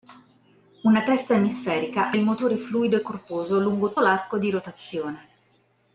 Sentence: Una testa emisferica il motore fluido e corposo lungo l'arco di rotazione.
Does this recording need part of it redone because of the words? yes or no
no